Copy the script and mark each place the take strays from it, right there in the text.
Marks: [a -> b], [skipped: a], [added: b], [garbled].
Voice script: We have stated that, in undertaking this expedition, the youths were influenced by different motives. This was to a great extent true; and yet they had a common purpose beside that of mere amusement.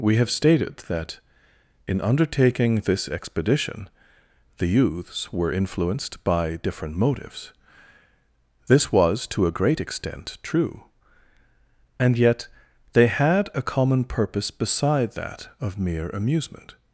We have stated that, in undertaking this expedition, the youths were influenced by different motives. This was to a great extent true; and yet they had a common purpose beside that of mere amusement.